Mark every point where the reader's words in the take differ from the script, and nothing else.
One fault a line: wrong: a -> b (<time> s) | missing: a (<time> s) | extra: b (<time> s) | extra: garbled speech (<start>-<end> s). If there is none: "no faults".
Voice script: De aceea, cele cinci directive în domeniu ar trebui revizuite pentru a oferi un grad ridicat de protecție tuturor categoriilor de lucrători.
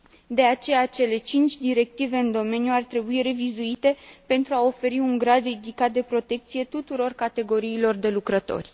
no faults